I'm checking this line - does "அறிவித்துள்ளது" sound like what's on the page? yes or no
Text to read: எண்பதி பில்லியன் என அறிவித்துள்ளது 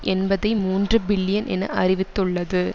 yes